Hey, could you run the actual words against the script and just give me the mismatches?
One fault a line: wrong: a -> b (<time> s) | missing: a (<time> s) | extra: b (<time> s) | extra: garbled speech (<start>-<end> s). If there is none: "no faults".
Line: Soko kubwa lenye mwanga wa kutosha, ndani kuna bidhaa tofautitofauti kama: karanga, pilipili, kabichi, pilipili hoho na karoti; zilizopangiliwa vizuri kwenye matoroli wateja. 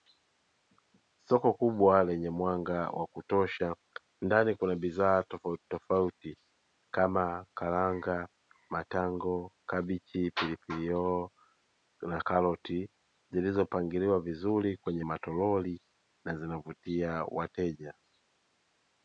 wrong: pilipili -> matango (8.7 s)
extra: na zinavutia (16.2 s)